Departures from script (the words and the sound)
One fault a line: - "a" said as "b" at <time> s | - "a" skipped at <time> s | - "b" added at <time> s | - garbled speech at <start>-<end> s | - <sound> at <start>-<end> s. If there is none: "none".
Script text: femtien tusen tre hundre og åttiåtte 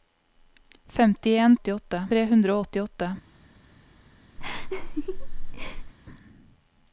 - "tusen" said as "åttiåtte" at 1.6 s
- laugh at 4.4-5.9 s